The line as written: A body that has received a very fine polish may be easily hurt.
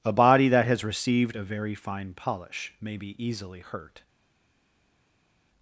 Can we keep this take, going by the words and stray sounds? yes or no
yes